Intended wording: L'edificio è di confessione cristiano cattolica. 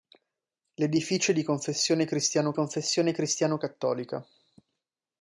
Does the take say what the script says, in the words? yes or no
no